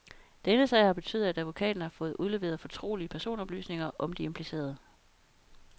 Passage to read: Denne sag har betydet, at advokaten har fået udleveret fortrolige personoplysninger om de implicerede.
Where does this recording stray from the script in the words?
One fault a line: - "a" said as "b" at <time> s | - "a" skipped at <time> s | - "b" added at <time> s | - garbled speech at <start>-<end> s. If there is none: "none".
none